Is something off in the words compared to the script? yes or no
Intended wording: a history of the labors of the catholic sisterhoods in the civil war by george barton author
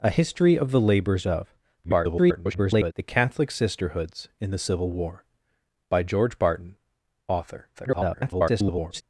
yes